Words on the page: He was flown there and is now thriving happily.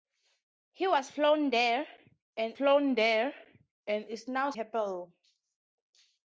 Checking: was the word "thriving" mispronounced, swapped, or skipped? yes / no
yes